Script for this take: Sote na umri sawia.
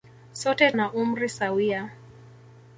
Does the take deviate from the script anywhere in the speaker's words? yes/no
no